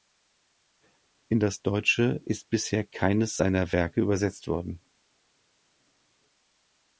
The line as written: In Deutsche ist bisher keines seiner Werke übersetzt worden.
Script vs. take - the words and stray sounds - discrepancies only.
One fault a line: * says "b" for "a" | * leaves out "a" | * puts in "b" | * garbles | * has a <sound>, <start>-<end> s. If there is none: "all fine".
* puts in "das"